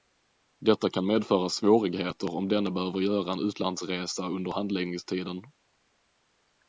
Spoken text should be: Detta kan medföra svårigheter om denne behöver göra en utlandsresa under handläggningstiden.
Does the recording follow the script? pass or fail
pass